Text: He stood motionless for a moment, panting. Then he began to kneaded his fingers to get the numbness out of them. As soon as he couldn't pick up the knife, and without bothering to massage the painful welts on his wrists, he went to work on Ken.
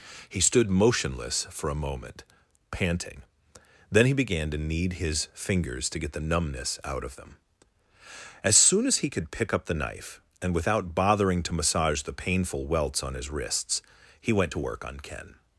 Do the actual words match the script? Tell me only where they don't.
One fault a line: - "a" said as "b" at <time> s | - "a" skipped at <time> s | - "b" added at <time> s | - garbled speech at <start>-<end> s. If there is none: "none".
- "kneaded" said as "knead" at 4.6 s
- "couldn't" said as "could" at 9.1 s